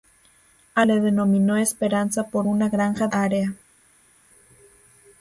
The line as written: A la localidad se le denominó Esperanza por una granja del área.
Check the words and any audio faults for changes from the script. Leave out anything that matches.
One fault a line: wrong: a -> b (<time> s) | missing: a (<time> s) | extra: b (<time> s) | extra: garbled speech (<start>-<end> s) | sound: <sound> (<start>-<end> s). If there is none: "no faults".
missing: la localidad se (0.9 s)
missing: del (3.1 s)